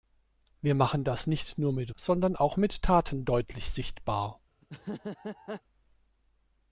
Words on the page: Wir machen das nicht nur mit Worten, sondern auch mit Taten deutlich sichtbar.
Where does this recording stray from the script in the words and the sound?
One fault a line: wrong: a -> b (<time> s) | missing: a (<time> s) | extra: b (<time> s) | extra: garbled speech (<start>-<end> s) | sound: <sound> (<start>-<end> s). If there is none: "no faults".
missing: Worten (1.9 s)
sound: laugh (4.6-5.6 s)